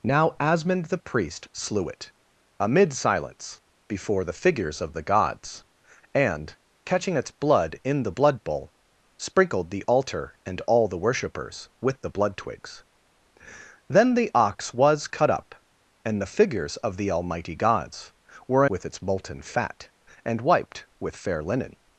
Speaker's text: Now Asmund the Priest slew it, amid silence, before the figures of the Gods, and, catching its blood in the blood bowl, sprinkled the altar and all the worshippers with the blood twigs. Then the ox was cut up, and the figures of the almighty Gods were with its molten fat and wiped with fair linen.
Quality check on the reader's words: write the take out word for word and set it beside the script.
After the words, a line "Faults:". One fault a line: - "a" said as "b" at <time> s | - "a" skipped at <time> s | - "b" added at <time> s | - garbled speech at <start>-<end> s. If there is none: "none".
Now Asmund the Priest slew it, amid silence, before the figures of the Gods, and, catching its blood in the blood bowl, sprinkled the altar and all the worshippers with the blood twigs. Then the ox was cut up, and the figures of the almighty Gods were with its molten fat and wiped with fair linen.
Faults:
none